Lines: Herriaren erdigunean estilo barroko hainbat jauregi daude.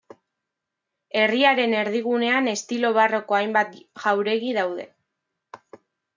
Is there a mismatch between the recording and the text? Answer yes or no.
no